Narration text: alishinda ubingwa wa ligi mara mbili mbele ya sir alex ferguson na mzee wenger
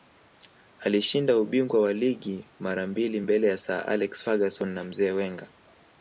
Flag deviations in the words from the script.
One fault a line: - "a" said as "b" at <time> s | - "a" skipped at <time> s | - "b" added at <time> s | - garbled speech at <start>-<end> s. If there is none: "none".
none